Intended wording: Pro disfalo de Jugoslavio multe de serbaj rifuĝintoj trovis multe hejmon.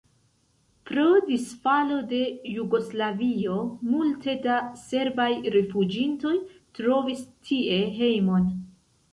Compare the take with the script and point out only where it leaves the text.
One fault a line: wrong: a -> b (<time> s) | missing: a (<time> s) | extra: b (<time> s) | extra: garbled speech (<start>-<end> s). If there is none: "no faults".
wrong: de -> da (4.5 s)
wrong: multe -> tie (7.5 s)